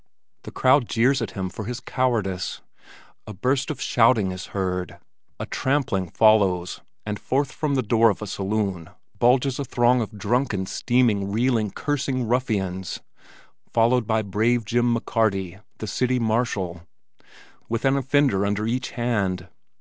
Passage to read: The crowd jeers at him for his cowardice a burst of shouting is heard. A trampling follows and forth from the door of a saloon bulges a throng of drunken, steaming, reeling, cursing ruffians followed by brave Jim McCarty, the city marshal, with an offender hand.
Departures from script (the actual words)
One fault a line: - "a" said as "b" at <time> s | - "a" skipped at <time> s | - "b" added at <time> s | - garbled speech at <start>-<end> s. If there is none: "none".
- "under each" added at 18.5 s